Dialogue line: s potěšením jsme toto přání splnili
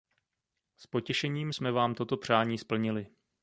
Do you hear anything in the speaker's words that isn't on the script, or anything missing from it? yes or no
yes